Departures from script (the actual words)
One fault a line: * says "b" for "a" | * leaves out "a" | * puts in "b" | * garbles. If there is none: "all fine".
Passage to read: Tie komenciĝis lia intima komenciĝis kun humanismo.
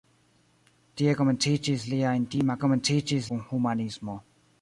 all fine